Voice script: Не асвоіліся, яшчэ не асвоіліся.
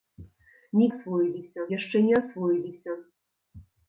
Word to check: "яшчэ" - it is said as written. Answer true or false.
true